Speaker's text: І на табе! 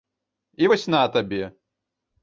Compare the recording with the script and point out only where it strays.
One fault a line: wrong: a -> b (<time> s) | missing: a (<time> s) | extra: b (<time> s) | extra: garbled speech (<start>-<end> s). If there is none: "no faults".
extra: вось (0.7 s)